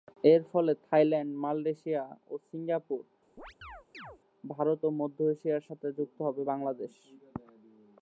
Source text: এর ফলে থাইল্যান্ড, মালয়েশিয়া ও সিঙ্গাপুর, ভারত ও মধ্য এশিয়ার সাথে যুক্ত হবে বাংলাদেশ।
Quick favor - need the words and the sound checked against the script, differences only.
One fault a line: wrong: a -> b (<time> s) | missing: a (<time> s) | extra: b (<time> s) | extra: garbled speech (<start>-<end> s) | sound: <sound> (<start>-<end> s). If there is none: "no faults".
sound: chirp (3.4-4.2 s)